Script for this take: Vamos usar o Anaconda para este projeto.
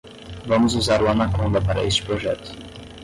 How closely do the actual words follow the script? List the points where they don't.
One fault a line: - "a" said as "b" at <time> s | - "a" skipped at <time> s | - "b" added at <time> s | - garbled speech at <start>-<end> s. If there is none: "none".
none